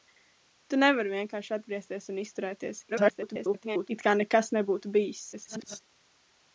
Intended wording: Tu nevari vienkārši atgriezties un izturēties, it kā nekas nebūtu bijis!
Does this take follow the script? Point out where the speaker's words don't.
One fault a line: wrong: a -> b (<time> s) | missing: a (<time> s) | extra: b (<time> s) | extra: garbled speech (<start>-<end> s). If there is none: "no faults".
extra: garbled speech (2.9-3.9 s)
extra: garbled speech (5.3-5.8 s)